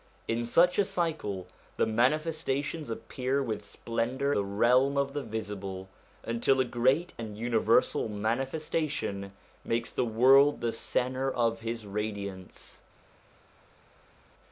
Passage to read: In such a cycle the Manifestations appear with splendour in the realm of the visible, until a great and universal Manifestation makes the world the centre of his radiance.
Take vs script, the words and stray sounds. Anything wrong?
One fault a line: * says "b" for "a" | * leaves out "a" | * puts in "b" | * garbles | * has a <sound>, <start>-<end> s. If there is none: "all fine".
* leaves out "in"